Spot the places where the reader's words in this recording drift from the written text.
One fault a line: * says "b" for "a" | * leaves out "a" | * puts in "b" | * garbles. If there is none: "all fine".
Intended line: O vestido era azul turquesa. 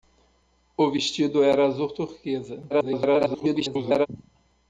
* garbles